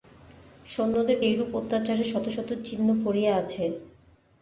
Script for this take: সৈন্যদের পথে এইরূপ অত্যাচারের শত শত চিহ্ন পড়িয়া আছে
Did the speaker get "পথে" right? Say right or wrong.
wrong